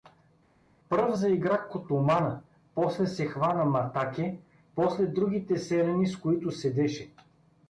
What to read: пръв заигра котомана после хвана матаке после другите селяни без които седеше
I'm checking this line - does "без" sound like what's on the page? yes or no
no